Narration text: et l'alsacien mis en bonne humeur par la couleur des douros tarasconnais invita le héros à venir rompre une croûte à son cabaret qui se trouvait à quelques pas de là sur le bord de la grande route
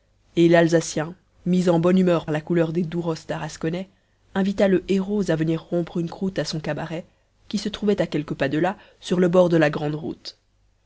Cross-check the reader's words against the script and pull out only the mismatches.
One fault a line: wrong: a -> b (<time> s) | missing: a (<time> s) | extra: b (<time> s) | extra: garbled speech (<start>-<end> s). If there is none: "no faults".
missing: par (2.2 s)